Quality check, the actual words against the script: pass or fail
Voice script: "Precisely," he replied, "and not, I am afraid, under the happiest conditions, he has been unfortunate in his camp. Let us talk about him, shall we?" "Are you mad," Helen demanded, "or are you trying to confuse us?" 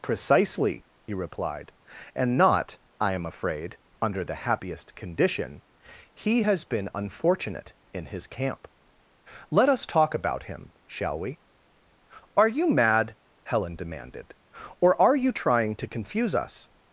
fail